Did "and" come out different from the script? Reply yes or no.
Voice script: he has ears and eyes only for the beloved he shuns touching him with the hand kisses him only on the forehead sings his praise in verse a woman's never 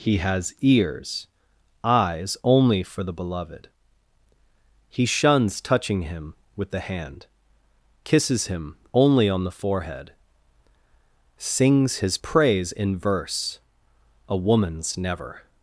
yes